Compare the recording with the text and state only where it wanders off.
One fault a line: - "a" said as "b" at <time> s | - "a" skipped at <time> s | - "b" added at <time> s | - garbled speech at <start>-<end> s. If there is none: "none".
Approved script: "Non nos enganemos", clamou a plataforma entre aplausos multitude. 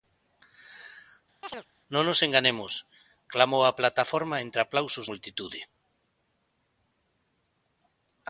none